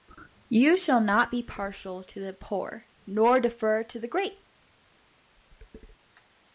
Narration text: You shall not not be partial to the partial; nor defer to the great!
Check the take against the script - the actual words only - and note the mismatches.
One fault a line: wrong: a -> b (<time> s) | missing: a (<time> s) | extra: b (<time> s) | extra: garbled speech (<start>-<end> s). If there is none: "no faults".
missing: not (1.3 s)
wrong: partial -> poor (2.3 s)